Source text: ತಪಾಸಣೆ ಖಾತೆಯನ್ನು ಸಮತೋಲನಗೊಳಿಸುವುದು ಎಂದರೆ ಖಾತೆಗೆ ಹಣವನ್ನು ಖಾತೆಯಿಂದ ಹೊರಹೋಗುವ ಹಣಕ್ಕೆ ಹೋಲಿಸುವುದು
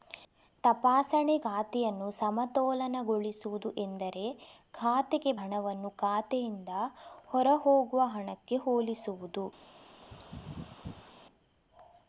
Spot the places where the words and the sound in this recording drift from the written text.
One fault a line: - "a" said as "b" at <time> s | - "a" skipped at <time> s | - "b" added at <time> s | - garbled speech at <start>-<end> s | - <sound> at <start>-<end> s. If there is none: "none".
- sneeze at 10.0-11.1 s